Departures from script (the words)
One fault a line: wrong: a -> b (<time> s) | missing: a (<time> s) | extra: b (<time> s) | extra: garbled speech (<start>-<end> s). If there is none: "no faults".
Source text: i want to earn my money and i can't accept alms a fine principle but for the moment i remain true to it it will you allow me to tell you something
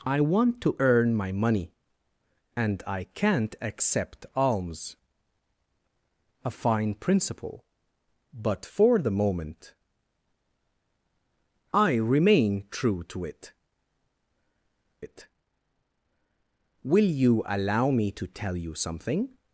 no faults